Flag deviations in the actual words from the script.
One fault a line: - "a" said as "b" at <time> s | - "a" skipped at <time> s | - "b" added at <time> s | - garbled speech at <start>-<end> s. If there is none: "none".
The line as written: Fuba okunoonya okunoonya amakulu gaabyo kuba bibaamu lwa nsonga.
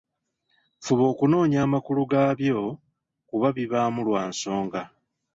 - "okunoonya" skipped at 1.6 s